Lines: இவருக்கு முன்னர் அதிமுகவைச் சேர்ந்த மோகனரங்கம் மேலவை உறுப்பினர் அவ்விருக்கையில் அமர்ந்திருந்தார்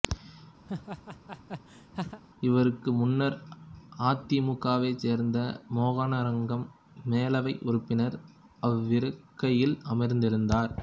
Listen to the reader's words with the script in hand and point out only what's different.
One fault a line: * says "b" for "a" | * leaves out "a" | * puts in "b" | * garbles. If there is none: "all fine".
all fine